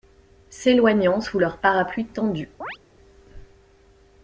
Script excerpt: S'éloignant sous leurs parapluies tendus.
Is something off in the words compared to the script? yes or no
no